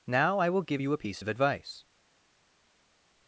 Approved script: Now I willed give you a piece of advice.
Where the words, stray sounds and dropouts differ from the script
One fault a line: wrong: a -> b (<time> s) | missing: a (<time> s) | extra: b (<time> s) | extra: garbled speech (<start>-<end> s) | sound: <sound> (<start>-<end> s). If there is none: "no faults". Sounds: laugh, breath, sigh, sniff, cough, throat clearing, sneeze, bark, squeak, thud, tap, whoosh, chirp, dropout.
wrong: willed -> will (0.5 s)